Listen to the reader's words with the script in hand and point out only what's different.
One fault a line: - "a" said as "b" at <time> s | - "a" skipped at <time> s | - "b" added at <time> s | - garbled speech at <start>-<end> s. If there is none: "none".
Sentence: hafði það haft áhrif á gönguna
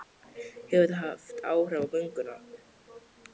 - "hafði" said as "hefur" at 0.7 s